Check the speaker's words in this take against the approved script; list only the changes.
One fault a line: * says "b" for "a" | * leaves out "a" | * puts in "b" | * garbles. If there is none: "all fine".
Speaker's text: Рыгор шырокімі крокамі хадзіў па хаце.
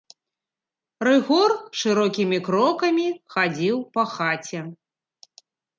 all fine